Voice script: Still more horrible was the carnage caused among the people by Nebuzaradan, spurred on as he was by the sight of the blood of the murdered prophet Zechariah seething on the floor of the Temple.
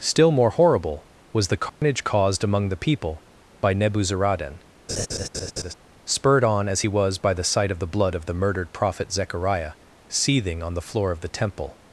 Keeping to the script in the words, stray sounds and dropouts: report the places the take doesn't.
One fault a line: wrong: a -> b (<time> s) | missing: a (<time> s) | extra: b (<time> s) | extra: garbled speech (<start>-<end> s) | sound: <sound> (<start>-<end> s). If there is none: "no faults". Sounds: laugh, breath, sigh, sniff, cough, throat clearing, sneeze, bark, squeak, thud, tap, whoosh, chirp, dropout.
sound: dropout (1.7-1.8 s)
sound: laugh (4.9-5.7 s)